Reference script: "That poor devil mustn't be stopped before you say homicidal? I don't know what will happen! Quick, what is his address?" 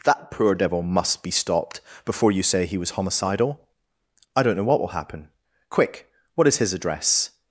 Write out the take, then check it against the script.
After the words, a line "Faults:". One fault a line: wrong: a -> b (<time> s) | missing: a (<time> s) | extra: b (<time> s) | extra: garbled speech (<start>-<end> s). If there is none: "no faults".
"That poor devil must be stopped before you say he was homicidal? I don't know what will happen! Quick, what is his address?"
Faults:
wrong: mustn't -> must (0.8 s)
extra: he was (2.6 s)